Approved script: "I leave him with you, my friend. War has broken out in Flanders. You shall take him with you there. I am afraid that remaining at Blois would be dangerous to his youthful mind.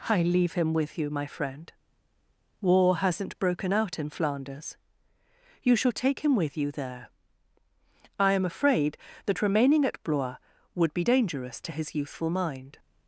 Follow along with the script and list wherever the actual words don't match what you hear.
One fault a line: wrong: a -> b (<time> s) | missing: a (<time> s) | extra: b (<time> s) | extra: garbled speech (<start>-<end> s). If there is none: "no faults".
wrong: has -> hasn't (3.0 s)